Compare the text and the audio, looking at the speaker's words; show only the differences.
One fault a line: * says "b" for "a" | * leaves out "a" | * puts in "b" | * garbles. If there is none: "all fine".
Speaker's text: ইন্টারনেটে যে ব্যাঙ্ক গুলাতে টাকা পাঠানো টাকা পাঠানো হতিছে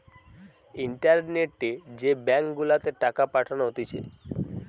* leaves out "টাকা পাঠানো"